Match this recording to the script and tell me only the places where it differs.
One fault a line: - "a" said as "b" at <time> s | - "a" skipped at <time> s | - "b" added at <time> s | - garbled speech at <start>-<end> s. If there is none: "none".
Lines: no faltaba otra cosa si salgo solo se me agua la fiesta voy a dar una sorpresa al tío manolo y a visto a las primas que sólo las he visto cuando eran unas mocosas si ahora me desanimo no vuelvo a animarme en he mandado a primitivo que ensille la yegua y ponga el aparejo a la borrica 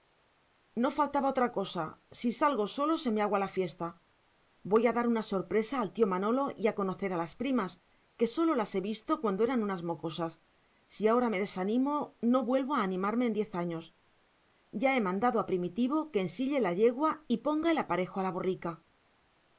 - "visto" said as "conocer" at 6.8 s
- "diez años ya" added at 13.3 s